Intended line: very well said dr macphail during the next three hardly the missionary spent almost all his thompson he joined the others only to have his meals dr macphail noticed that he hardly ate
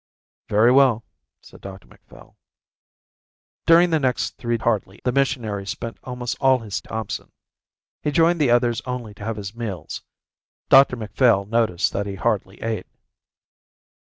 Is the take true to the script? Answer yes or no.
yes